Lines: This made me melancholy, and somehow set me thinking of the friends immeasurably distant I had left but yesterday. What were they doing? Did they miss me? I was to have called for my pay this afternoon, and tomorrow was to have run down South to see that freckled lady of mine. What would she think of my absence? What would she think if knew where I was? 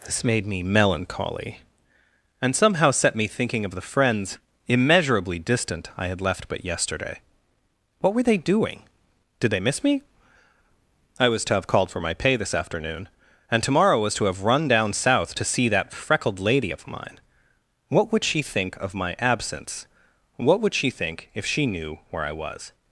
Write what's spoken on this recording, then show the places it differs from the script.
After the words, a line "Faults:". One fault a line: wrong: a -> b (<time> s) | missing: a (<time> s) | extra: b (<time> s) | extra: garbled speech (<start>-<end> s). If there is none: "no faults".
This made me melancholy, and somehow set me thinking of the friends immeasurably distant I had left but yesterday. What were they doing? Did they miss me? I was to have called for my pay this afternoon, and tomorrow was to have run down South to see that freckled lady of mine. What would she think of my absence? What would she think if she knew where I was?
Faults:
extra: she (21.5 s)